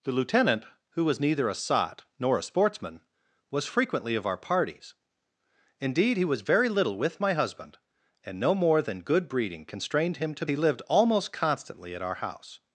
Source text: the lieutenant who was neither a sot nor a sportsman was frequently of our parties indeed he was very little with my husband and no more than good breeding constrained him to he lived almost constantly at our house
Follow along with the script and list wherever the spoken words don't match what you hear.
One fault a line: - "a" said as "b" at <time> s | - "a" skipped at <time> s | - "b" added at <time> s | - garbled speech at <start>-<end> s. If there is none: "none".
none